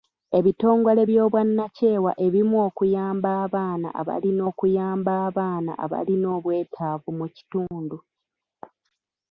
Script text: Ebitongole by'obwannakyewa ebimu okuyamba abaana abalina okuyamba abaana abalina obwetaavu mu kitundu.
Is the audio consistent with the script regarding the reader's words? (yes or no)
yes